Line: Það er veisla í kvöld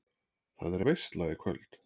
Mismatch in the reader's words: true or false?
false